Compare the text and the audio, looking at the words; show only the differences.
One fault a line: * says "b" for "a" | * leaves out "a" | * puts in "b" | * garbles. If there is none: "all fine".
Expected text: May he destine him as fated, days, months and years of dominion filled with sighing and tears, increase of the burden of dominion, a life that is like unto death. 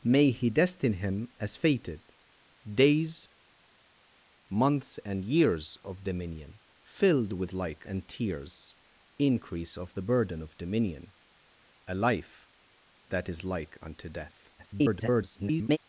* says "like" for "sighing"
* garbles